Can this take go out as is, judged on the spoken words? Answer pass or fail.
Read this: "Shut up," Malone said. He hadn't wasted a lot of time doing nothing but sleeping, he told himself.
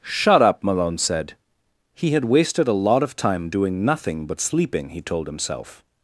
fail